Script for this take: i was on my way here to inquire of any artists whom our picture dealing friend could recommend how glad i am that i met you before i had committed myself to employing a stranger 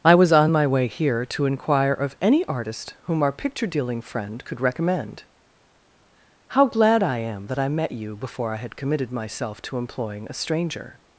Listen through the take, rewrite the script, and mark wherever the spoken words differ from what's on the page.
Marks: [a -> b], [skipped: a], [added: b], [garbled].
i was on my way here to inquire of any [artists -> artist] whom our picture dealing friend could recommend how glad i am that i met you before i had committed myself to employing a stranger